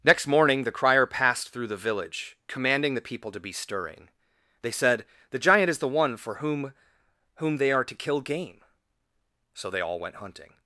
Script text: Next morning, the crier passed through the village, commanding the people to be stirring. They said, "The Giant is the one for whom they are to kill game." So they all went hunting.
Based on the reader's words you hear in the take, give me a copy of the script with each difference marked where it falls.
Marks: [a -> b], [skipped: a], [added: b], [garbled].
Next morning, the crier passed through the village, commanding the people to be stirring. They said, "The Giant is the one for whom [added: whom] they are to kill game." So they all went hunting.